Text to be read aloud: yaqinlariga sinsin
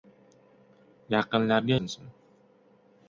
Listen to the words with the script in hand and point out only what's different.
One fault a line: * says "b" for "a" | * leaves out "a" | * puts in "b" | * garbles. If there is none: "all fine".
all fine